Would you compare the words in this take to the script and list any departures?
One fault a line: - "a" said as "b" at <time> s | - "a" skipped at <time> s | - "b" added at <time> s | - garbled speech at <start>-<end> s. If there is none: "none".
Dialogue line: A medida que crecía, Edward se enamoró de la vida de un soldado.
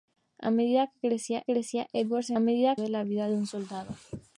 - "crecía" added at 1.4 s
- "enamoró" said as "medida" at 2.4 s